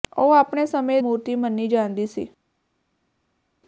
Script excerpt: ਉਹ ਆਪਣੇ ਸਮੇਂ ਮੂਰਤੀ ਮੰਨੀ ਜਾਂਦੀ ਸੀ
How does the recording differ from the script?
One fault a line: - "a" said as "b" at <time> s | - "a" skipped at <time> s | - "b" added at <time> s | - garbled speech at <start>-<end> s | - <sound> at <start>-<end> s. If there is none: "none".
none